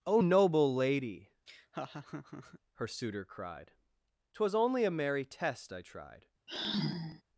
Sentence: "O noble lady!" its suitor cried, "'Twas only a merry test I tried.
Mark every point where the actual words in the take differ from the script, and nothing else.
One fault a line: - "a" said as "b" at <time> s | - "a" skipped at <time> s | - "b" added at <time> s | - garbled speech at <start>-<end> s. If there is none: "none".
- "its" said as "her" at 2.7 s